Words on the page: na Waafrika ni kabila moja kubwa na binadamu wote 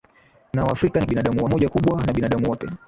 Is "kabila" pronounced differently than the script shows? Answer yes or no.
yes